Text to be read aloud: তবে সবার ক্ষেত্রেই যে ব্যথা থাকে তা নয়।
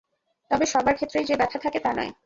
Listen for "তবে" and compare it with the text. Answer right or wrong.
right